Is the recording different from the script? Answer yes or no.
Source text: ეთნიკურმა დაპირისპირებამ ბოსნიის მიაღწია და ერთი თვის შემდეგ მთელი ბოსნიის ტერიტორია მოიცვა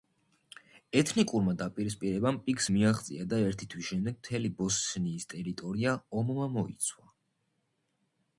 yes